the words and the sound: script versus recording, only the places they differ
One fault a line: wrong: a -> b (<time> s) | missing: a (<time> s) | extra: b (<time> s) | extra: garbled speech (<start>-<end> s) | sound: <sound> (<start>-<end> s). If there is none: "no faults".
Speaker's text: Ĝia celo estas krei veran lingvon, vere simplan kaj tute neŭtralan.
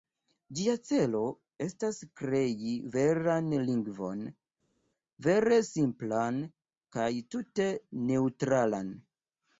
no faults